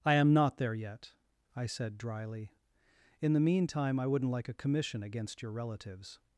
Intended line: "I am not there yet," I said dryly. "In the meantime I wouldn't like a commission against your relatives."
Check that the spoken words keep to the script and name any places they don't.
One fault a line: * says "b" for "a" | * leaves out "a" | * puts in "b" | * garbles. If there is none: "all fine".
all fine